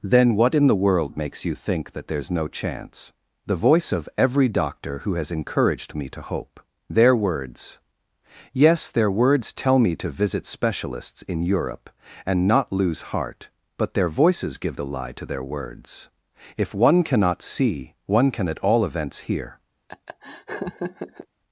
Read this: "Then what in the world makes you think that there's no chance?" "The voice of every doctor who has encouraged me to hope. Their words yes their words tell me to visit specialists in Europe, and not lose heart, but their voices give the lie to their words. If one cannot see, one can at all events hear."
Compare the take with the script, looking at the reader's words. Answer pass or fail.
pass